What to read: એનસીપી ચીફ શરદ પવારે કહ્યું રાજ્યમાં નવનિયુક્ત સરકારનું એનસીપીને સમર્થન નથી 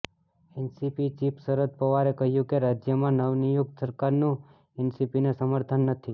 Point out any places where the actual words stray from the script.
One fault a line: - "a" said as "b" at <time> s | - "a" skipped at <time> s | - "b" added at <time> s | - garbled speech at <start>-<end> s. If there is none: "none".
- "કે" added at 2.5 s